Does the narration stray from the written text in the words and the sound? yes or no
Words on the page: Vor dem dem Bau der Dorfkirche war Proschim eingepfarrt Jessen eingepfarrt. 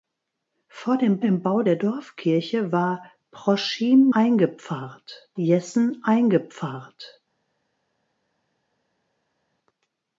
no